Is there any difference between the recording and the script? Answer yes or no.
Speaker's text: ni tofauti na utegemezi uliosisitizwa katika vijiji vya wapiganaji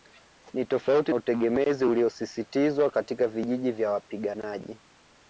yes